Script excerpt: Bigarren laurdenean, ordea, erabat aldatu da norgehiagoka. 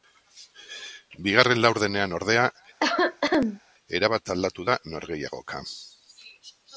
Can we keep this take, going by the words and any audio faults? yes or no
no